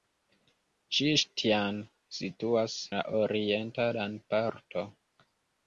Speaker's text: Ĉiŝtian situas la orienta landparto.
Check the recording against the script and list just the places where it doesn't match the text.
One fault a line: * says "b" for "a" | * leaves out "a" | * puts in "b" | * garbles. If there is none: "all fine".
all fine